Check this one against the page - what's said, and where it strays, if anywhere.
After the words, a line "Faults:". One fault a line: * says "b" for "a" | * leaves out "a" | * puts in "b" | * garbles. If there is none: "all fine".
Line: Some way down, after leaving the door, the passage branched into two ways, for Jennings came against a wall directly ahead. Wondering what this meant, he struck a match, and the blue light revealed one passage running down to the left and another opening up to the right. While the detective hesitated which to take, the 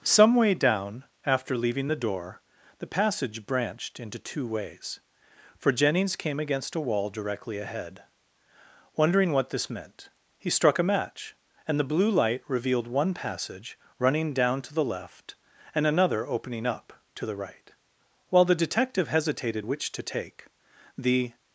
Some way down, after leaving the door, the passage branched into two ways, for Jennings came against a wall directly ahead. Wondering what this meant, he struck a match, and the blue light revealed one passage running down to the left and another opening up to the right. While the detective hesitated which to take, the
Faults:
all fine